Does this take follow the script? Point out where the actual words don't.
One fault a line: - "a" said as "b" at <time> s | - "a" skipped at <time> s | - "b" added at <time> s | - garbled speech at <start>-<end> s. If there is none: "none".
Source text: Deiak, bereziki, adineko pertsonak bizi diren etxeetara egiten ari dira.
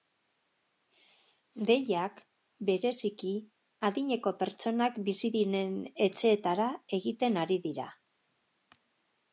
none